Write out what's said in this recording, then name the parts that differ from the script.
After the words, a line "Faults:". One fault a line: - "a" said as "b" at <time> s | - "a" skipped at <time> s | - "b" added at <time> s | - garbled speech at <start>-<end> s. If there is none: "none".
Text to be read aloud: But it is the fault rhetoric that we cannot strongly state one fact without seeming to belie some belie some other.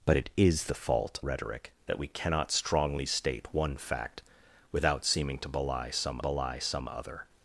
But it is the fault rhetoric that we cannot strongly state one fact without seeming to belie some belie some other.
Faults:
none